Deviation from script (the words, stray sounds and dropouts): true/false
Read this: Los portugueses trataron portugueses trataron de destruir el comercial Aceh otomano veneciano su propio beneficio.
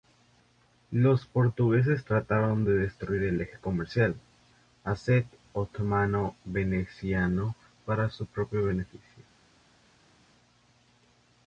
true